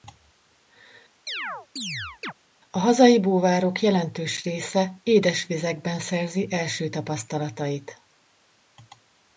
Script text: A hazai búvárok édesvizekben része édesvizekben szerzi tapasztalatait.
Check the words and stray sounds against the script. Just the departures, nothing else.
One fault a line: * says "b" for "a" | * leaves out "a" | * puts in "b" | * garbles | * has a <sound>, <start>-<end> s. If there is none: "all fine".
* has a chirp, 1.3-2.3 s
* says "jelentős" for "édesvizekben"
* puts in "első"